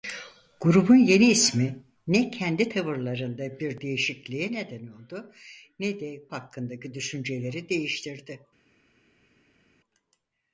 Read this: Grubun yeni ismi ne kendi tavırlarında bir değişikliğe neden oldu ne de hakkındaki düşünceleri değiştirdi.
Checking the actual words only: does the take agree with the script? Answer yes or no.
yes